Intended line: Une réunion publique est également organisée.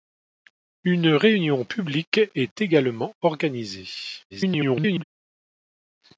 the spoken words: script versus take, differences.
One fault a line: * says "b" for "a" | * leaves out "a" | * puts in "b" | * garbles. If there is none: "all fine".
* garbles